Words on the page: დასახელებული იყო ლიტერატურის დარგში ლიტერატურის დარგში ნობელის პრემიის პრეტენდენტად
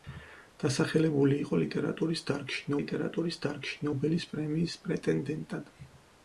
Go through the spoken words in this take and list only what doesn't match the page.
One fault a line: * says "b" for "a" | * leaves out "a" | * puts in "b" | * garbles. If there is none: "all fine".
all fine